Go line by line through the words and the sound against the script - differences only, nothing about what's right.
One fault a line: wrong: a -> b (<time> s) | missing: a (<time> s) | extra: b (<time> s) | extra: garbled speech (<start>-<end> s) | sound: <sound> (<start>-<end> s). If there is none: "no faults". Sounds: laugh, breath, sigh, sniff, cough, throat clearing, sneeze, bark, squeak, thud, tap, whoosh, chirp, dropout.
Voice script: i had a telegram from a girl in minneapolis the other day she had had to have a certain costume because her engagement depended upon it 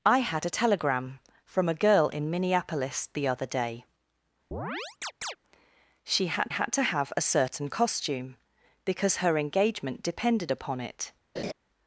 sound: chirp (4.5-5.4 s)
sound: laugh (11.4-11.5 s)